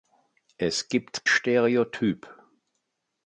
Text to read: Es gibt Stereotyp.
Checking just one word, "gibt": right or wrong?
right